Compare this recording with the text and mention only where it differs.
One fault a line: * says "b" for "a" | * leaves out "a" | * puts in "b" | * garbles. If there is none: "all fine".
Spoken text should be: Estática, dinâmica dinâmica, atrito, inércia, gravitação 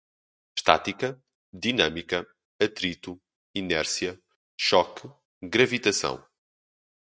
* leaves out "dinâmica"
* puts in "choque"